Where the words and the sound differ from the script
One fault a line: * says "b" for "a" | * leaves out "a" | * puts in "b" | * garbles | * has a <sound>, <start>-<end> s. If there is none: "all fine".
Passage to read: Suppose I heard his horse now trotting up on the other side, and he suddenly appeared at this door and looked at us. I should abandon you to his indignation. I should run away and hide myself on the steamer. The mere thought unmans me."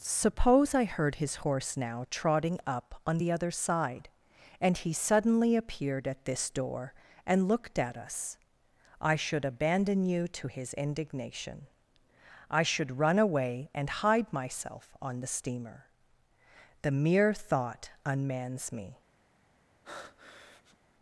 * has a breath, 19.8-20.8 s